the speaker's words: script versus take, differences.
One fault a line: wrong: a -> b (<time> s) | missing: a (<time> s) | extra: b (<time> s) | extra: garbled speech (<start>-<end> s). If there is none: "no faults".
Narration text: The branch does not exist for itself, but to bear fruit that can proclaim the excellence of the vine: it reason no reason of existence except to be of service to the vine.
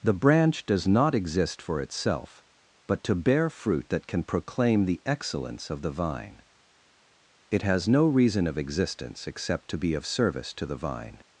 wrong: reason -> has (7.6 s)